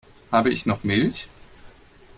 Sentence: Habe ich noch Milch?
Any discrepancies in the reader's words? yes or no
no